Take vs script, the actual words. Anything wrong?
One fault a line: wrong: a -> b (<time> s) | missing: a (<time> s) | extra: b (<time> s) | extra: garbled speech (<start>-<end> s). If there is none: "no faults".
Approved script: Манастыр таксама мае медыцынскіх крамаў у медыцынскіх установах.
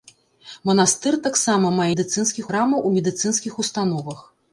no faults